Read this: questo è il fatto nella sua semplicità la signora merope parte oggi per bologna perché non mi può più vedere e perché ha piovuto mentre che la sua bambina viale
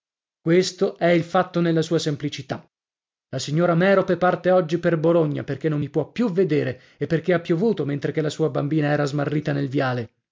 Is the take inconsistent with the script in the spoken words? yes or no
yes